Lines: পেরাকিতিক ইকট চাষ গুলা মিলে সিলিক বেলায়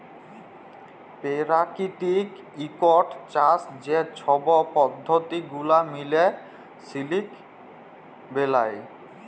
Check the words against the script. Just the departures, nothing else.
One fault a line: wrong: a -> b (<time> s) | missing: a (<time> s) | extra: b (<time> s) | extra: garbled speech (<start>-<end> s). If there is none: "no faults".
extra: যে ছব পদ্ধতি (3.8 s)